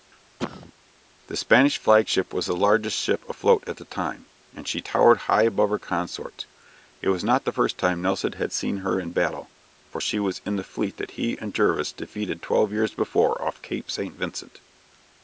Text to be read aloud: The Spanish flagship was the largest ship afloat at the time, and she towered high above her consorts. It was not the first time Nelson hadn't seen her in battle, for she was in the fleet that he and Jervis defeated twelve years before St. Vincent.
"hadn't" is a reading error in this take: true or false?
true